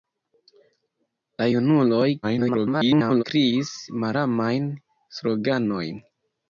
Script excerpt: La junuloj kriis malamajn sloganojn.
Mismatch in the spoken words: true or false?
true